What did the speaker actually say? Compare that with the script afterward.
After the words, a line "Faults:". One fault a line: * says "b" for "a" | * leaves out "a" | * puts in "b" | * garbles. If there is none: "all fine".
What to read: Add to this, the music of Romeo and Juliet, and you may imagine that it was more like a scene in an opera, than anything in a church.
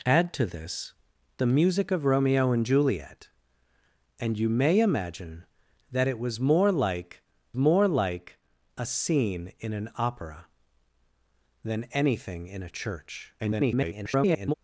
Add to this, the music of Romeo and Juliet, and you may imagine that it was more like more like a scene in an opera, than anything in a church. [garbled]
Faults:
* puts in "more like"
* garbles